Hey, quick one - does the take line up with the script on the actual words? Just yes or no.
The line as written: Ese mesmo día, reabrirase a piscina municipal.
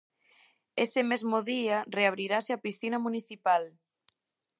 yes